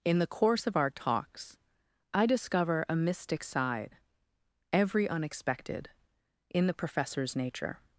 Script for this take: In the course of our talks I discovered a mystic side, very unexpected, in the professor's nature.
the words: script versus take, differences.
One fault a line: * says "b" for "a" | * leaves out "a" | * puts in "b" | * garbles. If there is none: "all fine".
* says "discover" for "discovered"
* says "every" for "very"